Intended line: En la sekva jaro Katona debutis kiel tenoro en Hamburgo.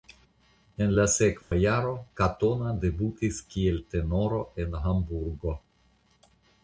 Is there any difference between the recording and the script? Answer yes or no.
no